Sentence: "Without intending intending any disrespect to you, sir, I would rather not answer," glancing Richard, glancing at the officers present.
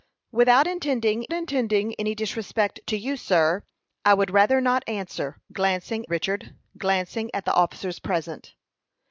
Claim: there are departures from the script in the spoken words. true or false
false